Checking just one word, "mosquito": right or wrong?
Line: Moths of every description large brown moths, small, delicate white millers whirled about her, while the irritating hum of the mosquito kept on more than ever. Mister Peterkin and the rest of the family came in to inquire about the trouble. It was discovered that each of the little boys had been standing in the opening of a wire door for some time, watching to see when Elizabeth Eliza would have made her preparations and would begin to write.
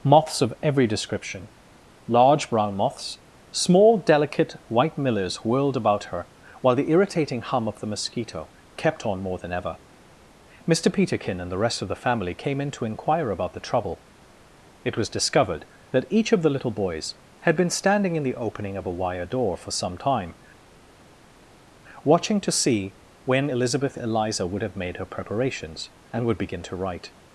right